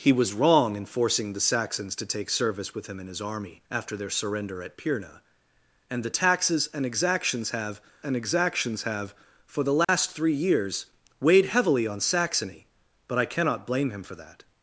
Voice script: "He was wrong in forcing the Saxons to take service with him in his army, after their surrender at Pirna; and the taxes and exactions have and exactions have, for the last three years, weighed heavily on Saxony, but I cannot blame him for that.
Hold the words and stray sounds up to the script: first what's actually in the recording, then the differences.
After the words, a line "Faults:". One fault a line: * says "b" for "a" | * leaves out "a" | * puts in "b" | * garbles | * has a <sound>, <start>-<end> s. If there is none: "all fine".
"He was wrong in forcing the Saxons to take service with him in his army, after their surrender at Pirna; and the taxes and exactions have and exactions have, for the last three years, weighed heavily on Saxony, but I cannot blame him for that.
Faults:
* has a dropout, 9.8-9.9 s